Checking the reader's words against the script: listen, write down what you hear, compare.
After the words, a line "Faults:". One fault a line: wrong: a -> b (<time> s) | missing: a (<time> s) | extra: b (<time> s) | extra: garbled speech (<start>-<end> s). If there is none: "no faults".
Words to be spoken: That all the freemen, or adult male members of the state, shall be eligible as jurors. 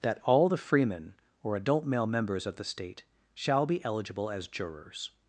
That all the freemen, or adult male members of the state, shall be eligible as jurors.
Faults:
no faults